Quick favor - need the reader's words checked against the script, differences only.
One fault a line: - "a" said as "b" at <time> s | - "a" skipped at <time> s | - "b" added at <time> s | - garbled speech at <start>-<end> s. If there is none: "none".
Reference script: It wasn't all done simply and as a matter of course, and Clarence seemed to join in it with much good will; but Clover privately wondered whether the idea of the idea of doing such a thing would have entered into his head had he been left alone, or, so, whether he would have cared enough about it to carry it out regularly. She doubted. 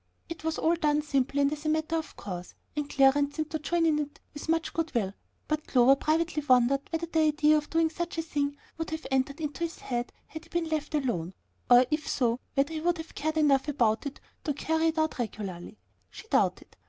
- "wasn't" said as "was" at 0.4 s
- "the idea of" skipped at 7.7 s
- "if" added at 11.9 s